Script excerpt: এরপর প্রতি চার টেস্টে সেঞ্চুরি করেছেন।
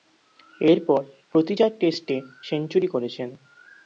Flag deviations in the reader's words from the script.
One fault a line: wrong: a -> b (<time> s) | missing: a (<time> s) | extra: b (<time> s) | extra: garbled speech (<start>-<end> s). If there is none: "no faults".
no faults